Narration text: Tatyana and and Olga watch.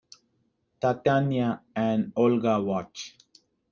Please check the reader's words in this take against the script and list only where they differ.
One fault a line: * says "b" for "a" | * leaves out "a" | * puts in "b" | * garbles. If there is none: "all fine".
* leaves out "and"